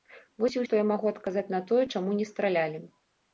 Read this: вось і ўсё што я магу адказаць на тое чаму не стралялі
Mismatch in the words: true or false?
true